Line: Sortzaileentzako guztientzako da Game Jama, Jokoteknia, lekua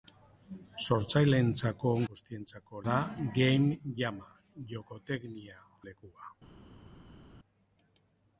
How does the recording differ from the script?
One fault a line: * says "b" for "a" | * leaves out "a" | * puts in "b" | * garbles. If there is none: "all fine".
all fine